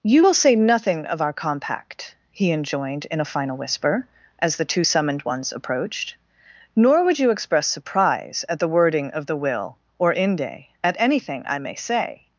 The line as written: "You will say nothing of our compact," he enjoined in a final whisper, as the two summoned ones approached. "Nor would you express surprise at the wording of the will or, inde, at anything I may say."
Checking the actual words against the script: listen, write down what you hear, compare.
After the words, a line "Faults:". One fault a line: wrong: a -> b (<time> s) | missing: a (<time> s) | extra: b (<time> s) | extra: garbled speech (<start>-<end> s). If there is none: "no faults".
"You will say nothing of our compact," he enjoined in a final whisper, as the two summoned ones approached. "Nor would you express surprise at the wording of the will or, inde, at anything I may say."
Faults:
no faults